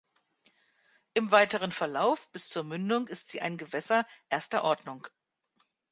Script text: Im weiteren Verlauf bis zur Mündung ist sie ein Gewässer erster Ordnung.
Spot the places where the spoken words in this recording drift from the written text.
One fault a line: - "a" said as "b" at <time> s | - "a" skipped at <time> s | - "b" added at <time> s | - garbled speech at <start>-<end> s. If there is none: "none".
none